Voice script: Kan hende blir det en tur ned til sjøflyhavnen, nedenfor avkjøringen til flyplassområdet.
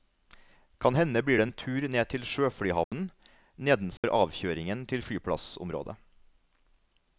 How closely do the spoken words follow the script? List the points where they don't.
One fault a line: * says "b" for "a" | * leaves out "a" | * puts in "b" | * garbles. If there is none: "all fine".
all fine